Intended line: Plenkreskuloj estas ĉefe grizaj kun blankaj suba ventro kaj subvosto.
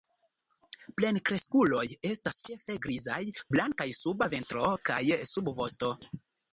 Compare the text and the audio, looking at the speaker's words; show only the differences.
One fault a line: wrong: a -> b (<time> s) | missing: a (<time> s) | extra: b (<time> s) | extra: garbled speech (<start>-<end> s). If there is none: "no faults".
missing: kun (3.2 s)